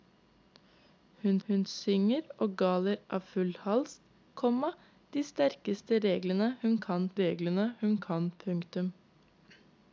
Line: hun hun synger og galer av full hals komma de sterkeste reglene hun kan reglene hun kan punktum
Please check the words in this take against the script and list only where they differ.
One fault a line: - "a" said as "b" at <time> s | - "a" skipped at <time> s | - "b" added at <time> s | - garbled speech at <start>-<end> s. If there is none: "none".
none